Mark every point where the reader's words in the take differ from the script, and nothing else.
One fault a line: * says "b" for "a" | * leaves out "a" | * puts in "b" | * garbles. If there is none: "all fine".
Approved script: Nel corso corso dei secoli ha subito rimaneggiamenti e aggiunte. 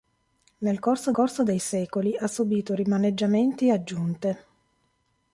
all fine